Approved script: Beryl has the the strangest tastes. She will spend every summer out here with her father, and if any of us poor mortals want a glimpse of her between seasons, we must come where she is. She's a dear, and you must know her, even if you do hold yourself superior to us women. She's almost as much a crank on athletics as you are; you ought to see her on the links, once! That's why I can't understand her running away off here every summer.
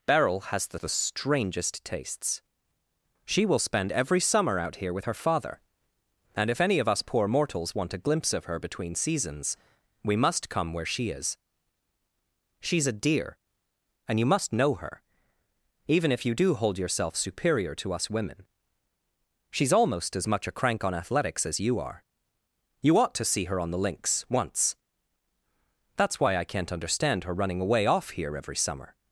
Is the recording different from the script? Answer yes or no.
no